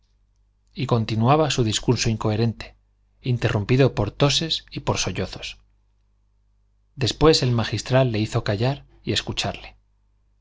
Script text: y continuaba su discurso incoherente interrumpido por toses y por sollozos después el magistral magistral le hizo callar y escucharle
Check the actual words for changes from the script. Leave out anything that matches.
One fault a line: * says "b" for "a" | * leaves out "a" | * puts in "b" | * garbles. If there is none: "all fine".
* leaves out "magistral"